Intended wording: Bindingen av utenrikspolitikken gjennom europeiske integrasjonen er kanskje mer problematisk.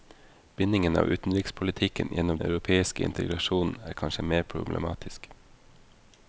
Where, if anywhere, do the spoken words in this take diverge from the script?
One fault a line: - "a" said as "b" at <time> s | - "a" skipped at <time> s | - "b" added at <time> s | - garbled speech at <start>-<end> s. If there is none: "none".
none